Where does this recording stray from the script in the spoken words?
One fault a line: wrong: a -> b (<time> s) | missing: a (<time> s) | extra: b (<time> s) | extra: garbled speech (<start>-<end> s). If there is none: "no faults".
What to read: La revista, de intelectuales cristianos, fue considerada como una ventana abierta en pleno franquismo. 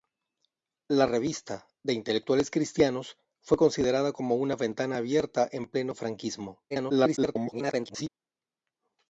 extra: garbled speech (6.7-8.1 s)